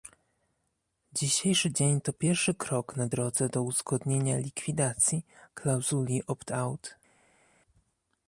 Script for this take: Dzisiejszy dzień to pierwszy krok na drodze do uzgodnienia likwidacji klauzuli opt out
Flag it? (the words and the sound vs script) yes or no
no